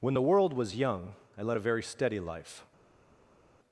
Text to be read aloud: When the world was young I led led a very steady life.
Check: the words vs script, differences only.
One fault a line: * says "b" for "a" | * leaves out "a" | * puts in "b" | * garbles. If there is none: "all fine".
* leaves out "led"